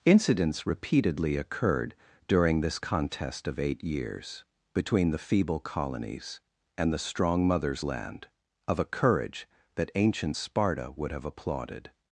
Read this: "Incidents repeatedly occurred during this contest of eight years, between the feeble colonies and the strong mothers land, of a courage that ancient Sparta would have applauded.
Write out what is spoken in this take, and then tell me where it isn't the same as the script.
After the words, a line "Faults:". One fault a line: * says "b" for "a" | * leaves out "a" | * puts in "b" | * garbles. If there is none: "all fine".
"Incidents repeatedly occurred during this contest of eight years, between the feeble colonies and the strong mothers land, of a courage that ancient Sparta would have applauded.
Faults:
all fine